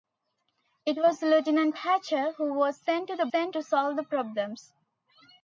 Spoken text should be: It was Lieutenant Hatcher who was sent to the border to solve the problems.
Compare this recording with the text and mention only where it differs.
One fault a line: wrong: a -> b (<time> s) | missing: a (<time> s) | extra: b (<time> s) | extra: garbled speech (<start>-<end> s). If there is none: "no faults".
wrong: border -> sent (3.3 s)